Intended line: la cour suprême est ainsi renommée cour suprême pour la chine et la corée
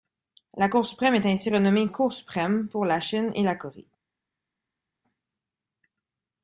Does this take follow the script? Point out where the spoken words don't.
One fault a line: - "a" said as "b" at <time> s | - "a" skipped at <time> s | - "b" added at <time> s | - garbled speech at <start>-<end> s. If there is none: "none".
none